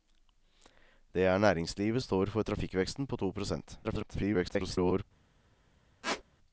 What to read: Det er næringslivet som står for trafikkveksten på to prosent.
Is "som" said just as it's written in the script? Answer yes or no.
no